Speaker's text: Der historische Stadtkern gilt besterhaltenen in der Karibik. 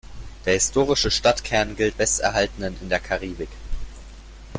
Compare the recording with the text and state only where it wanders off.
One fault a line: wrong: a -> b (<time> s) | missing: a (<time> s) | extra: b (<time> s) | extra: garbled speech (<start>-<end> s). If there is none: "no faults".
no faults